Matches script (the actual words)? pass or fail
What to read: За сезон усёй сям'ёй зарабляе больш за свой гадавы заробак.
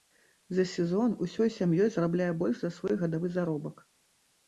pass